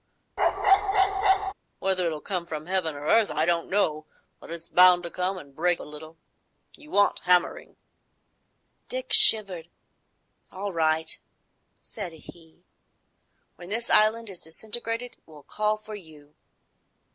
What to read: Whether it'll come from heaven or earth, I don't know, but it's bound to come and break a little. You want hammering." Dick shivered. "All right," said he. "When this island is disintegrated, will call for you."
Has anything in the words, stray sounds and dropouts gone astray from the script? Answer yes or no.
yes